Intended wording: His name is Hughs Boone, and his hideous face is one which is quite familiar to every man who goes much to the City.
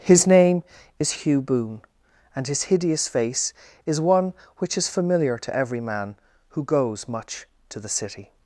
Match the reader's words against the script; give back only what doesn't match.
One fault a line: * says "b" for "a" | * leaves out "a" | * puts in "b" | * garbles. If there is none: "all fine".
* says "Hugh" for "Hughs"
* leaves out "quite"